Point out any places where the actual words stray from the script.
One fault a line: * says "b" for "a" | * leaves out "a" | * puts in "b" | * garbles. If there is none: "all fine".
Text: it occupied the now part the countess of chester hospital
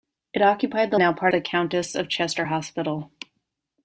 all fine